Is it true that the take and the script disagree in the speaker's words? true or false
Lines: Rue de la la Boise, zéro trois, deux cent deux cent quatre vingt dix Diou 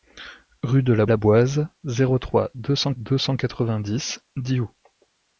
false